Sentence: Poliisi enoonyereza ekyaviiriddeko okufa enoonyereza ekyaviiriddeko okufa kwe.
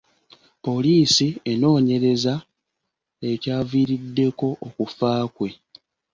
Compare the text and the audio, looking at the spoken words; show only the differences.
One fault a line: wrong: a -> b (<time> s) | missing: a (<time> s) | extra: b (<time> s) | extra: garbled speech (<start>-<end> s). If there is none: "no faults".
missing: enoonyereza ekyaviiriddeko okufa (5.1 s)